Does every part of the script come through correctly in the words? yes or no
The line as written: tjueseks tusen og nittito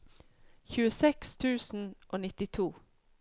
yes